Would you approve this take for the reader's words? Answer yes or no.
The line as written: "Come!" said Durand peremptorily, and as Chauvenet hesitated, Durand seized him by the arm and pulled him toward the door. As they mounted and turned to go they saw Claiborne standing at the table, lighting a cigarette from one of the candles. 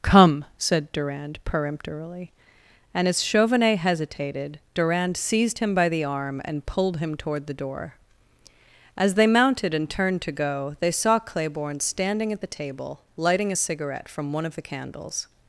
yes